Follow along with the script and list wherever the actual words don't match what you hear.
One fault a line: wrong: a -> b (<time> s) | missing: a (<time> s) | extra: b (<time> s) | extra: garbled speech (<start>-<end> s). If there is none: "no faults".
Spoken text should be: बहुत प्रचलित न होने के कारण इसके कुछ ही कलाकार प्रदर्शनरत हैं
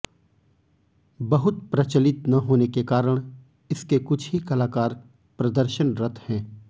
no faults